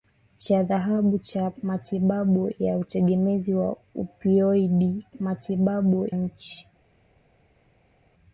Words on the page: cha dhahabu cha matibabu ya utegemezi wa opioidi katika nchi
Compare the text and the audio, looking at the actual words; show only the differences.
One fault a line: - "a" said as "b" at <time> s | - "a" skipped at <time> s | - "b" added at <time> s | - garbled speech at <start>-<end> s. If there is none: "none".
- "katika" said as "matibabu" at 5.2 s